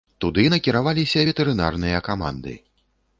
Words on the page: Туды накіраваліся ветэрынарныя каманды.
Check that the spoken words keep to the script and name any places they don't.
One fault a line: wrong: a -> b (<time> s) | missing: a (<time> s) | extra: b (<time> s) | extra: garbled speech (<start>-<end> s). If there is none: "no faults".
no faults